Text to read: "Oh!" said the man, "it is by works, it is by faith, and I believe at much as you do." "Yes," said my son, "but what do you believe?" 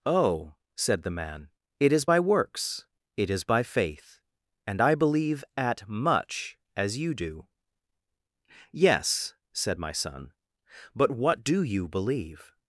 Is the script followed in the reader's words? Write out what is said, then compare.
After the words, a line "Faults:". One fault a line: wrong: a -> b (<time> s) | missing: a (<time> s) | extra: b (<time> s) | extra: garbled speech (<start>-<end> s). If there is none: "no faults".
"Oh!" said the man, "it is by works, it is by faith, and I believe at much as you do." "Yes," said my son, "but what do you believe?"
Faults:
no faults